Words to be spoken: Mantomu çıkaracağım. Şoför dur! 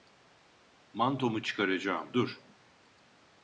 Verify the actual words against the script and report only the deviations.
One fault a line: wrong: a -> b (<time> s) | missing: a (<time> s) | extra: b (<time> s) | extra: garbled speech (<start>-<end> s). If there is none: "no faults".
missing: Şoför (2.1 s)